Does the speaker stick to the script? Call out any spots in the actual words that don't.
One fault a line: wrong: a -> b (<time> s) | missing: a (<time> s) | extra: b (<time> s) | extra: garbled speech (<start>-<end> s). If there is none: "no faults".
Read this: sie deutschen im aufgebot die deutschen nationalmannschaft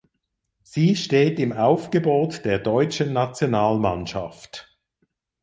wrong: deutschen -> steht (0.9 s)
wrong: die -> der (2.4 s)